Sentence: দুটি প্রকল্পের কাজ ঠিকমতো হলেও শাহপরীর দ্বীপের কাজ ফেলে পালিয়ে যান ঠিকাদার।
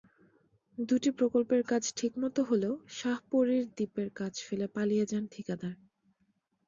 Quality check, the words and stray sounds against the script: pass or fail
pass